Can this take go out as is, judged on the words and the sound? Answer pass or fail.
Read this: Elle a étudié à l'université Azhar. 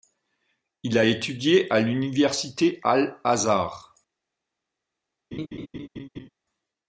fail